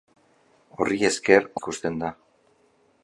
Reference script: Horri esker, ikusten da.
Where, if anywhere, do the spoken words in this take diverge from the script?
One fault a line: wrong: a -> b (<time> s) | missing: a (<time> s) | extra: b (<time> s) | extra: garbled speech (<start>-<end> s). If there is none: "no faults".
no faults